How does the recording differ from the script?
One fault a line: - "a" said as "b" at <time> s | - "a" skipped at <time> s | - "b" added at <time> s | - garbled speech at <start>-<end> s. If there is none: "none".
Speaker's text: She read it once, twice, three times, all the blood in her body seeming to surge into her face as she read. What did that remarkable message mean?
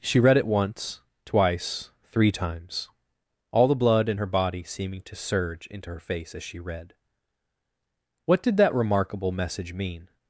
none